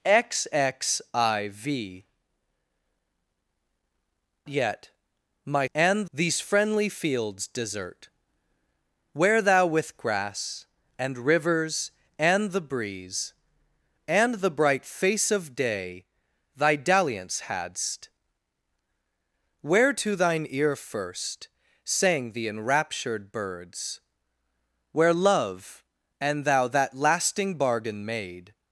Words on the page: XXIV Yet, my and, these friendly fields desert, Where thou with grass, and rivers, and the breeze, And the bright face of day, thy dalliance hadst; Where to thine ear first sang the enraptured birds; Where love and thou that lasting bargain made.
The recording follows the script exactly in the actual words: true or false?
true